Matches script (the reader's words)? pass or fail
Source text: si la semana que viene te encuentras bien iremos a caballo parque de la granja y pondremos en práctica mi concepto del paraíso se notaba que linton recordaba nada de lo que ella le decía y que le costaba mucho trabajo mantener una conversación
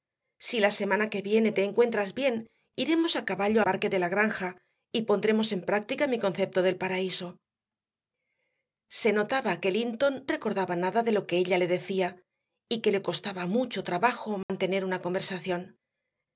pass